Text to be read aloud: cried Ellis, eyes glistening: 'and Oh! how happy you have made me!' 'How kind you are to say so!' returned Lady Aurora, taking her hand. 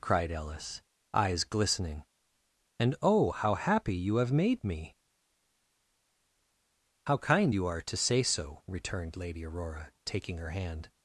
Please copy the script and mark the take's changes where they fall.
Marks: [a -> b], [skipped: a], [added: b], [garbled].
cried Ellis, eyes glistening: 'and Oh! how happy you have made me!' 'How kind you are to say so!' returned Lady Aurora, taking her hand.